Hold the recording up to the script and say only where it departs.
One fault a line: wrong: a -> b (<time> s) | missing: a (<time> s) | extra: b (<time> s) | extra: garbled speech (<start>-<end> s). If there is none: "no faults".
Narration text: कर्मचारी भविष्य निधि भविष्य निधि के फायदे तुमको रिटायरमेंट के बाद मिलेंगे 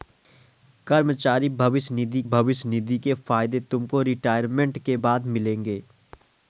no faults